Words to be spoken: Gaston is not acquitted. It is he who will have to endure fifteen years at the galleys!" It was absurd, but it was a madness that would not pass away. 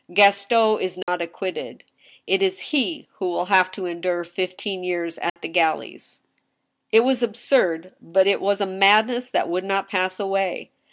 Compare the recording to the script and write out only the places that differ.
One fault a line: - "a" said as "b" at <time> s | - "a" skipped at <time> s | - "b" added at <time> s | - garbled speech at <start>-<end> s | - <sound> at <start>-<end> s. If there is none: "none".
- dropout at 1.0-1.1 s
- dropout at 5.3-5.4 s